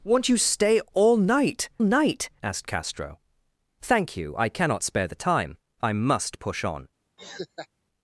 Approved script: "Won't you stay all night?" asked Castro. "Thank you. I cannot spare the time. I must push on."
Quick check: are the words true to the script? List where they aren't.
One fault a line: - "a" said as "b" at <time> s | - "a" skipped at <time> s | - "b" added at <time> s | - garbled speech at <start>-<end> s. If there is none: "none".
- "night" added at 1.8 s